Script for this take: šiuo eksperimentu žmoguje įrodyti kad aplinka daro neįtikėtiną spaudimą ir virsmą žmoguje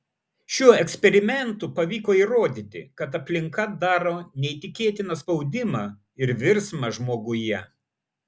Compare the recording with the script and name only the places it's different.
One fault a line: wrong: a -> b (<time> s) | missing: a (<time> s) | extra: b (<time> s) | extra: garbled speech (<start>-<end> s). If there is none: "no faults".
wrong: žmoguje -> pavyko (1.8 s)